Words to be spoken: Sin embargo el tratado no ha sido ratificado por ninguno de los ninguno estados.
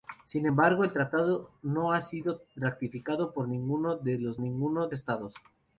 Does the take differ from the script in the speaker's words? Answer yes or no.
no